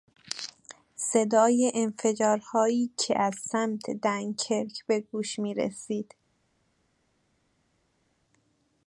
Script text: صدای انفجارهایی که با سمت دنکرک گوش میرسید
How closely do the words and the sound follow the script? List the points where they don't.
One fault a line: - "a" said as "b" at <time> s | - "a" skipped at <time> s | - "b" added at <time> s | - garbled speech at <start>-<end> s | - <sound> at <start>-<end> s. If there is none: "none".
- "با" said as "از" at 3.2 s
- "به" added at 4.9 s